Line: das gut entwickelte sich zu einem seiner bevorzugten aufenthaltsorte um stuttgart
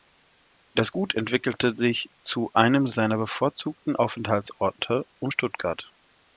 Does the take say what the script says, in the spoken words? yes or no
yes